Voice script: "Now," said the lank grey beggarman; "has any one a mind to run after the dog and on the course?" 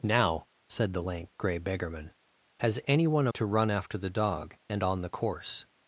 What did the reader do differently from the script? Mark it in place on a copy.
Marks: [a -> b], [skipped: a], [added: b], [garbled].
"Now," said the lank grey beggarman; "has any one a [skipped: mind] to run after the dog and on the course?"